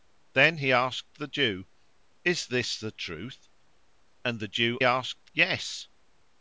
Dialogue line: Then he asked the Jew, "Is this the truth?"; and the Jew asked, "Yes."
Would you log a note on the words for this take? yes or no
no